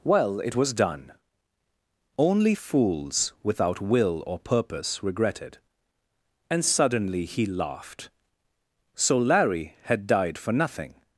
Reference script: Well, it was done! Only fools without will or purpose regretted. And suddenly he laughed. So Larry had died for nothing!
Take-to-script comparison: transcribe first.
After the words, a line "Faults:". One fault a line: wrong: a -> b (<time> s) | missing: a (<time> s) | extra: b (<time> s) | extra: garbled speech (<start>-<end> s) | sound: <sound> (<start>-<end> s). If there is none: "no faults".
Well, it was done! Only fools without will or purpose regretted. And suddenly he laughed. So Larry had died for nothing!
Faults:
no faults